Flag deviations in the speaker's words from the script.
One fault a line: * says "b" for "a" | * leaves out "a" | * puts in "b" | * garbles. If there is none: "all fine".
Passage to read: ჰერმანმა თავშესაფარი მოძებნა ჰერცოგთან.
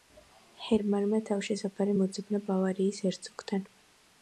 * puts in "ბავარიის"